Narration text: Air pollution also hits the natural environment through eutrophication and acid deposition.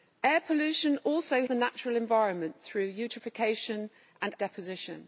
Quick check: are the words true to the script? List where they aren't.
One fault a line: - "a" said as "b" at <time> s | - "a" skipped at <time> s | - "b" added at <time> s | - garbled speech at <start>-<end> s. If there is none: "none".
- "hits" skipped at 1.4 s
- "acid" skipped at 4.3 s